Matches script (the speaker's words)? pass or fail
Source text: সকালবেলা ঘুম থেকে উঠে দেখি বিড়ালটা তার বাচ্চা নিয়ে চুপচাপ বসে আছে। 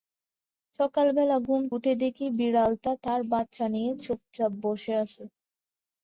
fail